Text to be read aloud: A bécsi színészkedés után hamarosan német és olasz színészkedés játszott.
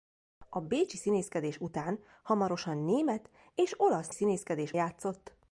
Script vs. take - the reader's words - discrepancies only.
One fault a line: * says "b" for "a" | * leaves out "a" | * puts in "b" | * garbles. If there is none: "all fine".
all fine